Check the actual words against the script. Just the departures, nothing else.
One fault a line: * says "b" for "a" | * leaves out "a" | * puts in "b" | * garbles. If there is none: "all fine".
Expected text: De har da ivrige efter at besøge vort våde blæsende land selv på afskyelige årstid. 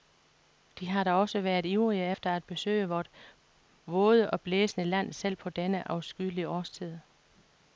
* puts in "også været"
* puts in "og"
* puts in "denne"